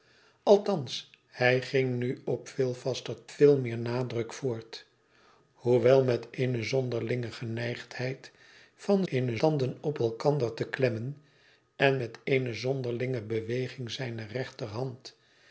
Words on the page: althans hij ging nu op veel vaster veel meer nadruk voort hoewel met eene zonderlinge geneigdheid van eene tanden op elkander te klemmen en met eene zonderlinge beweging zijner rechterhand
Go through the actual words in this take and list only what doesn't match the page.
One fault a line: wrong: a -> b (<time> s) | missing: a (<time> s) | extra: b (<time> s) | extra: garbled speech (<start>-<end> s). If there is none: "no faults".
no faults